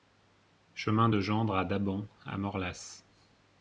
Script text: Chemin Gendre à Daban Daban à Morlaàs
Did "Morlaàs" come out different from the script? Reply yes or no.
no